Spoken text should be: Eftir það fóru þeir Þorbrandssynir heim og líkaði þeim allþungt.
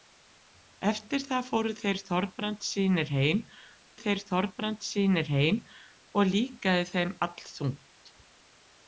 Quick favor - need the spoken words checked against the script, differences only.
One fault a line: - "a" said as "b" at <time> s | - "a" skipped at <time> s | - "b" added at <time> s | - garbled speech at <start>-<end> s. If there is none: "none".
- "þeir Þorbrandssynir heim" added at 4.0 s